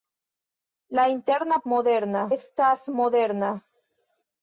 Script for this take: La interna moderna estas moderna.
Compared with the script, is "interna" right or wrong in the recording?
right